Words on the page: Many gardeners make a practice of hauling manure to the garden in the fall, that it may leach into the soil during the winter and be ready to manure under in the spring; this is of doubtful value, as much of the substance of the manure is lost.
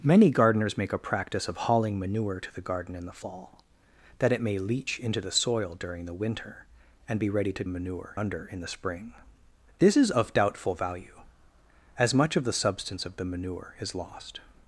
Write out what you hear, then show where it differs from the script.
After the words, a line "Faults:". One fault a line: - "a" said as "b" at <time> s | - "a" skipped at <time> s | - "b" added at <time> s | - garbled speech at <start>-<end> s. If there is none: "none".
Many gardeners make a practice of hauling manure to the garden in the fall, that it may leach into the soil during the winter and be ready to manure under in the spring; this is of doubtful value, as much of the substance of the manure is lost.
Faults:
none